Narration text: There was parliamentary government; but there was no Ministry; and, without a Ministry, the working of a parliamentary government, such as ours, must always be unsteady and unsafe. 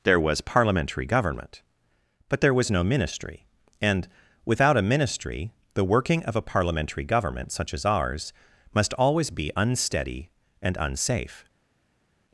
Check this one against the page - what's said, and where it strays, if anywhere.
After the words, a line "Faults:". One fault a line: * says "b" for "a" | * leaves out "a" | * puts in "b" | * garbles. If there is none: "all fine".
There was parliamentary government; but there was no Ministry; and, without a Ministry, the working of a parliamentary government, such as ours, must always be unsteady and unsafe.
Faults:
all fine